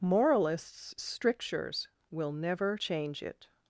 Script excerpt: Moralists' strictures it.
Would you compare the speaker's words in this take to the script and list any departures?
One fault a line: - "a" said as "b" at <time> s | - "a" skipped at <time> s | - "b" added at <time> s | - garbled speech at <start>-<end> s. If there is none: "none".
- "will never change" added at 2.1 s